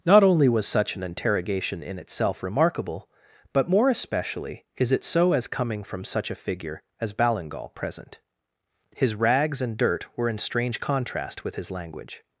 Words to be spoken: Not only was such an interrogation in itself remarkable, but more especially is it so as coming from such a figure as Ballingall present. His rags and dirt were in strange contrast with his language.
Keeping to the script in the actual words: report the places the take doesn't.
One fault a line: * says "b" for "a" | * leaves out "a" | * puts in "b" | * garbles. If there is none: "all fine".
all fine